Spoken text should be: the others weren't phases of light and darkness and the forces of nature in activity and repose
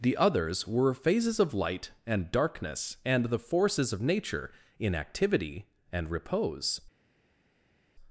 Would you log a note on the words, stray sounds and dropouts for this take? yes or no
yes